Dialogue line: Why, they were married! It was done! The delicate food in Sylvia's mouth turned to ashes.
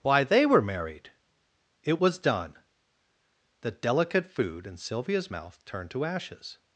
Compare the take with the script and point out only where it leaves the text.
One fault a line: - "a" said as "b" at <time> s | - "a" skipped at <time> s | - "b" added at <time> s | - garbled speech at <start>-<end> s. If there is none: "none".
none